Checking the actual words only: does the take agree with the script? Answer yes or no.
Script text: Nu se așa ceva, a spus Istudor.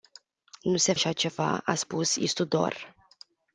yes